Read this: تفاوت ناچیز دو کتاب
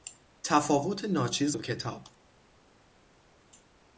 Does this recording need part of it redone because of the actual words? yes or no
no